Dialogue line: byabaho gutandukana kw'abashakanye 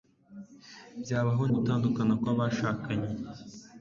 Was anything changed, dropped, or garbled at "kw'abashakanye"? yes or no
no